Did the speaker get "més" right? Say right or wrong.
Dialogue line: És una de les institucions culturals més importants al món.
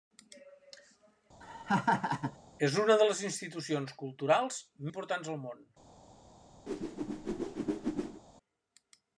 wrong